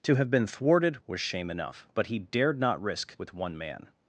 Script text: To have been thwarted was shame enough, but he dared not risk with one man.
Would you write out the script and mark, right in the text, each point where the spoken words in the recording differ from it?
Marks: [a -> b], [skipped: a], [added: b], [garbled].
To have been thwarted was shame enough, but he dared not risk with one man.